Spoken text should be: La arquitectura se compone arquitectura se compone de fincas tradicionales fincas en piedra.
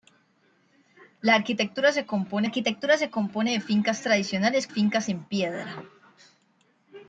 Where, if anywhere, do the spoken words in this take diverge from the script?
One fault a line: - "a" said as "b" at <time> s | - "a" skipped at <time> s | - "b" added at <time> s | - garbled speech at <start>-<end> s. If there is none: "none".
none